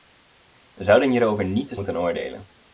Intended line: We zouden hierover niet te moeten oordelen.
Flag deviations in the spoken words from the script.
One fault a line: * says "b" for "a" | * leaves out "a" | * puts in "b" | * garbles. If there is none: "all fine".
all fine